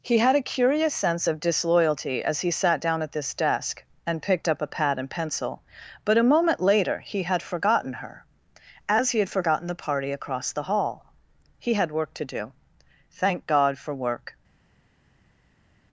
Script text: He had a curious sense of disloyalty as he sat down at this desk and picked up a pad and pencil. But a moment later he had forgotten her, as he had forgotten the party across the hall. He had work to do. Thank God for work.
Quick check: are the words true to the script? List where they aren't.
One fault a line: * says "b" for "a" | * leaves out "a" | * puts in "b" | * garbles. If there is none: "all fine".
all fine